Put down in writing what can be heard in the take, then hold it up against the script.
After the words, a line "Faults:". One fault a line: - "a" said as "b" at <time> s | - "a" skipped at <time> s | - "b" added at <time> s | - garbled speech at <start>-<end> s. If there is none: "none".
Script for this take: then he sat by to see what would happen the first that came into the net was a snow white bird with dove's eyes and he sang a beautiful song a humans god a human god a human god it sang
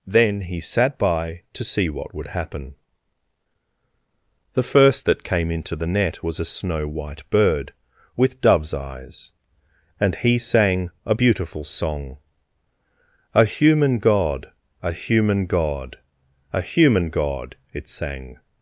then he sat by to see what would happen the first that came into the net was a snow white bird with dove's eyes and he sang a beautiful song a human god a human god a human god it sang
Faults:
- "humans" said as "human" at 13.4 s